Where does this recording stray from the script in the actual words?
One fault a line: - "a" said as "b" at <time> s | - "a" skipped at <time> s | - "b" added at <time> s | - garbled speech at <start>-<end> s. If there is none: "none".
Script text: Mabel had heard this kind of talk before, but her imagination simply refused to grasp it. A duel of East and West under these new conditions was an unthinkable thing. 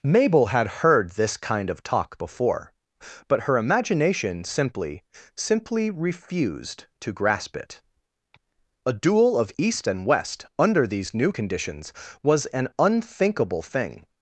- "simply" added at 5.3 s